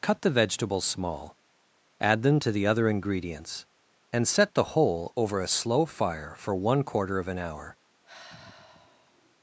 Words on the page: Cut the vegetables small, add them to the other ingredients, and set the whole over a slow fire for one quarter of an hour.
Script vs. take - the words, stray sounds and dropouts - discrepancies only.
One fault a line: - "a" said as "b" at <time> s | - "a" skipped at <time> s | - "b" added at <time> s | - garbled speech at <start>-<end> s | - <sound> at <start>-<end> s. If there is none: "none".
- sigh at 8.0-9.4 s